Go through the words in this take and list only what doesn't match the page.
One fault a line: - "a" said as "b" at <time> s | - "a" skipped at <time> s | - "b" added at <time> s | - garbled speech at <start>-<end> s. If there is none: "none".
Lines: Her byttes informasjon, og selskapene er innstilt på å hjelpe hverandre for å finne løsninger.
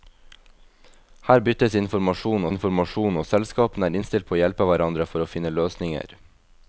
- "informasjon" added at 2.5 s